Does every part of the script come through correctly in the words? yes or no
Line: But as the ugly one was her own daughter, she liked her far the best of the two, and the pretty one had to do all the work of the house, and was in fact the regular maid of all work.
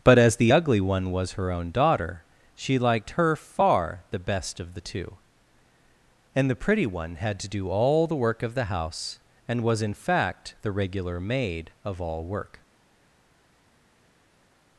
yes